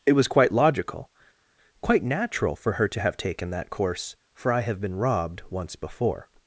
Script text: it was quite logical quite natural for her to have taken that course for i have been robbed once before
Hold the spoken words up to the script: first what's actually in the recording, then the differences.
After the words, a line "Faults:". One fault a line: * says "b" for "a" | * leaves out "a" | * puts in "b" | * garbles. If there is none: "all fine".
it was quite logical quite natural for her to have taken that course for i have been robbed once before
Faults:
all fine